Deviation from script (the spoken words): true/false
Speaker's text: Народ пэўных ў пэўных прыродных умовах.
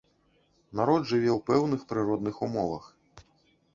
true